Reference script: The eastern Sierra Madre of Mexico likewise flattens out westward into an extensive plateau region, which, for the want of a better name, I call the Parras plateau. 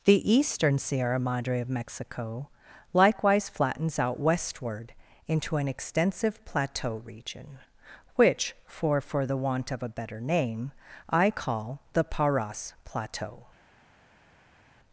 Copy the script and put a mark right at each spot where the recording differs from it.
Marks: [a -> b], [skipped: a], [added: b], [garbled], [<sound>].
The eastern Sierra Madre of Mexico likewise flattens out westward into an extensive plateau region, which, for [added: for] the want of a better name, I call the Parras plateau.